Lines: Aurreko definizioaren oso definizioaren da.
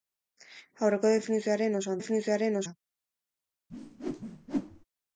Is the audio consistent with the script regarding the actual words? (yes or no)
yes